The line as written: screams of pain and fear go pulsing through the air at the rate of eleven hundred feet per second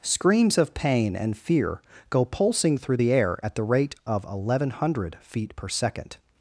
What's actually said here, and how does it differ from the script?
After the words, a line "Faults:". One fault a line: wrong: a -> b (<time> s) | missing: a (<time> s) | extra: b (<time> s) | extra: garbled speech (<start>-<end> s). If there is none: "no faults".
screams of pain and fear go pulsing through the air at the rate of eleven hundred feet per second
Faults:
no faults